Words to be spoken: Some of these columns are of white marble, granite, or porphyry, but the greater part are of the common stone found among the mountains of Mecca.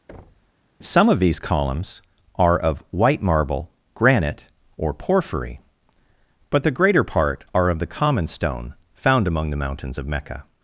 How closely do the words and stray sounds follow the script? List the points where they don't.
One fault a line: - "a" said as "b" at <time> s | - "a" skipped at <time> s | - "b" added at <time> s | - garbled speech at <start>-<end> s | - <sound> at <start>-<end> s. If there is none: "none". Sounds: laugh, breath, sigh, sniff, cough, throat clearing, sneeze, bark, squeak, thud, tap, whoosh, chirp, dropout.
- thud at 0.1-0.5 s